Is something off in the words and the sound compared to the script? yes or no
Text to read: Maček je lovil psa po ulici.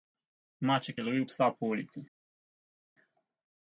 no